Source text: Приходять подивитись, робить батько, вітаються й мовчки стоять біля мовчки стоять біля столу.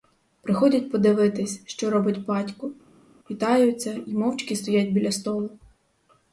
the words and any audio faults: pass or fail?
fail